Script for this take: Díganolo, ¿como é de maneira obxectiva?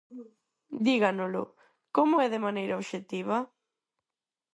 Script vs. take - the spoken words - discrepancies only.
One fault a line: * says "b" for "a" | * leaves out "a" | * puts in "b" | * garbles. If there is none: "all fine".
all fine